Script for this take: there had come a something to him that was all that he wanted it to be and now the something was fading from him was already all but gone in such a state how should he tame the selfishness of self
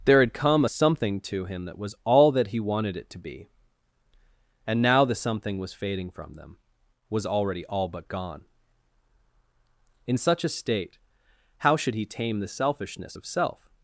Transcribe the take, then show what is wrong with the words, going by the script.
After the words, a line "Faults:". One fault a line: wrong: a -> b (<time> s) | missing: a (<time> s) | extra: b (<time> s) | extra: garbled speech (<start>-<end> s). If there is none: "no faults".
there had come a something to him that was all that he wanted it to be and now the something was fading from them was already all but gone in such a state how should he tame the selfishness of self
Faults:
wrong: him -> them (6.3 s)